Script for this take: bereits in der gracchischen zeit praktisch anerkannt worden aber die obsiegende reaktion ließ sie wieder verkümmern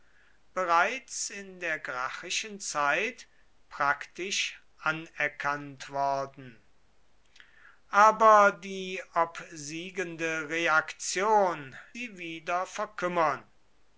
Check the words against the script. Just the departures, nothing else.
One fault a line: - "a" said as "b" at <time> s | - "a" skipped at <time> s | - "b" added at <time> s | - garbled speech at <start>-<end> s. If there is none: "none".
- "ließ" skipped at 11.8 s